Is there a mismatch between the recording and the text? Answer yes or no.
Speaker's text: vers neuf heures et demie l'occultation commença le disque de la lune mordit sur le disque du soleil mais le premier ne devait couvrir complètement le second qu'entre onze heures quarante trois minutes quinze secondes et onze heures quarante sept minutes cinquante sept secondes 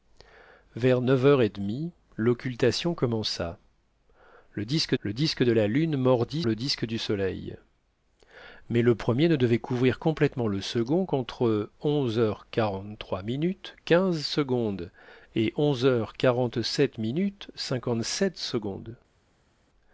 yes